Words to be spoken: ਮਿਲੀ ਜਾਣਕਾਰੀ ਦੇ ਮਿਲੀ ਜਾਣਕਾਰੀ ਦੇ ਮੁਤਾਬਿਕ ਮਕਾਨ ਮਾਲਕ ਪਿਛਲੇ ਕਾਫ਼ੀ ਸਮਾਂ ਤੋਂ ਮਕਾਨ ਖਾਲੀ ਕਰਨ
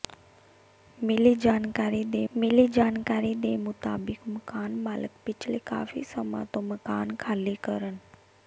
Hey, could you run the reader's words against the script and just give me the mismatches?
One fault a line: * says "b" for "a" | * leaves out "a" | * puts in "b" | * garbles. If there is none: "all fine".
all fine